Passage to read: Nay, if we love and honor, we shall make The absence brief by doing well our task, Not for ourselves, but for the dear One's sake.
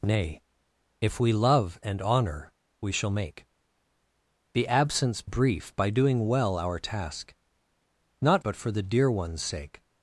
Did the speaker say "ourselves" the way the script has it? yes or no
no